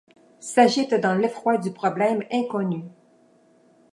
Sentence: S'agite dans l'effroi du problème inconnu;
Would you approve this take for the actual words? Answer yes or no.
yes